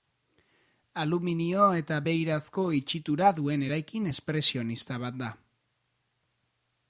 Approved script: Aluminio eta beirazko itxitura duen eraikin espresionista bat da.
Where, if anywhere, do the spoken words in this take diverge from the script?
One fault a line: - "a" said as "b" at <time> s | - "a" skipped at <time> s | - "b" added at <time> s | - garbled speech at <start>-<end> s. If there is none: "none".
none